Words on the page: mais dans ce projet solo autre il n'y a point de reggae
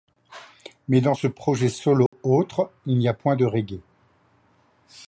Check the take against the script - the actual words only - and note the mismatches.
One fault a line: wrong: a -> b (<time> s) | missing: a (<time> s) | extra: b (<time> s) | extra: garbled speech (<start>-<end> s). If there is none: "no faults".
no faults